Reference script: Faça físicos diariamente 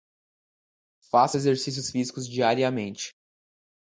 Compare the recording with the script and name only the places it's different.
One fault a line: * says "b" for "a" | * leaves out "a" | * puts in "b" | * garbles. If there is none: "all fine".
* puts in "exercícios"